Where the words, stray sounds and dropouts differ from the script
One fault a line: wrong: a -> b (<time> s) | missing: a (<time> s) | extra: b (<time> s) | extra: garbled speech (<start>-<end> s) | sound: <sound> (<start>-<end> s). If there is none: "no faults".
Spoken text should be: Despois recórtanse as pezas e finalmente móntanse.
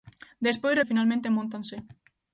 missing: recórtanse as pezas (0.8 s)